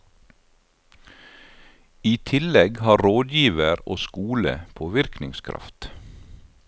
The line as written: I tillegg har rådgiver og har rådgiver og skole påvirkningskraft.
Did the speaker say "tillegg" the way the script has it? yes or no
yes